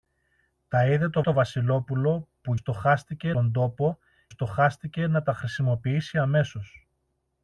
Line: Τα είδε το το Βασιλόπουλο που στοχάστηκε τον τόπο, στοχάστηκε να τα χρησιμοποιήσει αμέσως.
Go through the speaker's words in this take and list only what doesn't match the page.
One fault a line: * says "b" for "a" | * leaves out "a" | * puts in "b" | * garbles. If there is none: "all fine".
all fine